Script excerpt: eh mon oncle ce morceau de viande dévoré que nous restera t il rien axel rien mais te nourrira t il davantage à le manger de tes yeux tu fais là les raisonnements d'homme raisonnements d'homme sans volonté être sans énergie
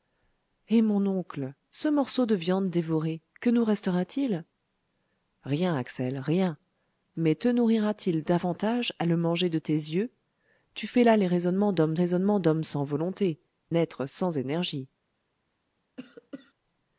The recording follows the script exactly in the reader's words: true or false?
true